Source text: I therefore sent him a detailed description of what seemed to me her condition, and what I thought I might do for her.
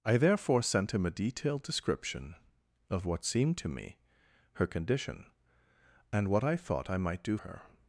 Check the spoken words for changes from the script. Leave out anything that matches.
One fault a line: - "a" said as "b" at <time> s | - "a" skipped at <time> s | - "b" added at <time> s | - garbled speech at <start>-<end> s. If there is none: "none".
- "for" skipped at 7.4 s